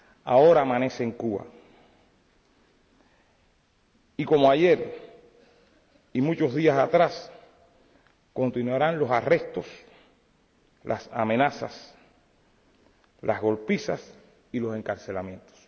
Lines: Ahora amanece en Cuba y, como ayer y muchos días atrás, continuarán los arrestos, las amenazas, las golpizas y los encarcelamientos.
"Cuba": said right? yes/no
yes